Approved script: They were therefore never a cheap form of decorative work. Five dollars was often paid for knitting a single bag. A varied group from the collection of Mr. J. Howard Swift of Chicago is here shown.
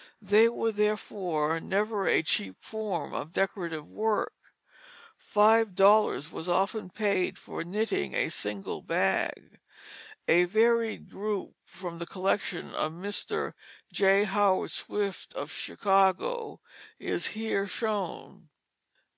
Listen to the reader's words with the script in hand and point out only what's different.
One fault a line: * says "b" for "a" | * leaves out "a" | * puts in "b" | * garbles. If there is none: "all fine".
all fine